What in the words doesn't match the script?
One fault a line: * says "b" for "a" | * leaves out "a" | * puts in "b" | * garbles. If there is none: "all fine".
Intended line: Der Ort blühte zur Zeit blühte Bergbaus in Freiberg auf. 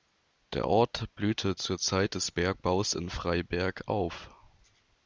* says "des" for "blühte"